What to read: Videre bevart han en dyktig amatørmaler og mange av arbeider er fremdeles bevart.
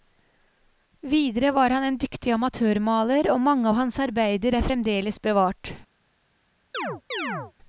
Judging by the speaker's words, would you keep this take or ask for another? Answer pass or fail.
fail